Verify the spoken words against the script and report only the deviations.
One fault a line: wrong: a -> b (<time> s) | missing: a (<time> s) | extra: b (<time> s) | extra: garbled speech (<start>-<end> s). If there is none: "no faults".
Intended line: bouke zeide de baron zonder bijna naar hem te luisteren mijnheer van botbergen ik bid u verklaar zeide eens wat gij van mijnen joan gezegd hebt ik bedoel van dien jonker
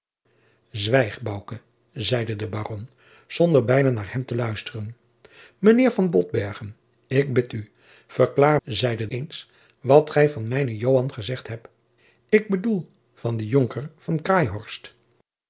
no faults